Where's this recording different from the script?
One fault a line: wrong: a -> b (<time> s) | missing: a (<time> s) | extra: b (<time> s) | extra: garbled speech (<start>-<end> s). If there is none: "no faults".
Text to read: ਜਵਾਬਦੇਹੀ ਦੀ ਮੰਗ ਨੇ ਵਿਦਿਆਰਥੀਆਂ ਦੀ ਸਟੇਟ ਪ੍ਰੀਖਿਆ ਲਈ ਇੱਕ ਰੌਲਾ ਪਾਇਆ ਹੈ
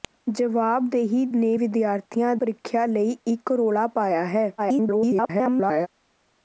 missing: ਦੀ ਮੰਗ (1.2 s)
missing: ਦੀ ਸਟੇਟ (2.3 s)
extra: garbled speech (4.6-5.9 s)